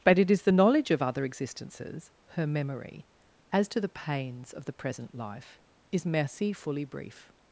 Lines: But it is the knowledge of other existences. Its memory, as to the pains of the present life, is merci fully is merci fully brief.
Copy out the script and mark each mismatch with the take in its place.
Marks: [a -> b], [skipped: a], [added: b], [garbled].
But it is the knowledge of other existences. [Its -> Her] memory, as to the pains of the present life, is merci fully [skipped: is merci fully] brief.